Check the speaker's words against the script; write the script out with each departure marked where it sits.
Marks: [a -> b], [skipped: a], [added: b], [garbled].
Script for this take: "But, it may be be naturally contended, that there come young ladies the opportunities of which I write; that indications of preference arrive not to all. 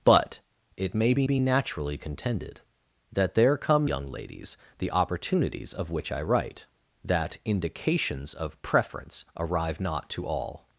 "But, it may be be naturally contended, that there come young ladies the opportunities of which I write; that indications of preference arrive not to all.